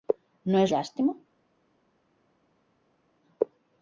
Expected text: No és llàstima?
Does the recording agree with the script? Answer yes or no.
yes